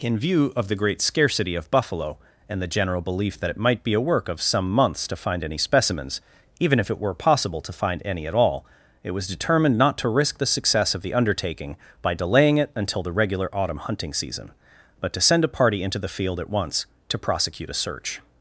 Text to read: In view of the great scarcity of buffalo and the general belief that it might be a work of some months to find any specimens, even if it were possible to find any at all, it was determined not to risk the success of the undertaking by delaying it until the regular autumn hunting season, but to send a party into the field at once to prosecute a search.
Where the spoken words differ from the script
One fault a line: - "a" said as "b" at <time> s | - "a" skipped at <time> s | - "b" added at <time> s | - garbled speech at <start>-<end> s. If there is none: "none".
none